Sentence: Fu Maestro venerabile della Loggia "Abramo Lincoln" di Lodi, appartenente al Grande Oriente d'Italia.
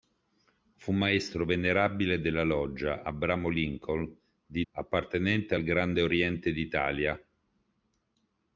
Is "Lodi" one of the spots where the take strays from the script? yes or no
yes